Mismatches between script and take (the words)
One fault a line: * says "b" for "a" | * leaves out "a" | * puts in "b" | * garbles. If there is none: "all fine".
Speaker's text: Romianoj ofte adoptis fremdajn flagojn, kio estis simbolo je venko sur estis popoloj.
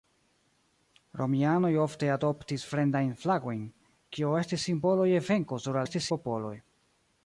all fine